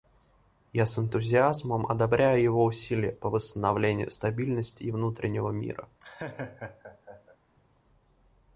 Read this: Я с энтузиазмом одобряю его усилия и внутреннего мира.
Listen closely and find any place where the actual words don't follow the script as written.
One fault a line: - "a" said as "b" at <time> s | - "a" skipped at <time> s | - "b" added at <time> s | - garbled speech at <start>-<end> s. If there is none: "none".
- "по восстановлению стабильности" added at 3.1 s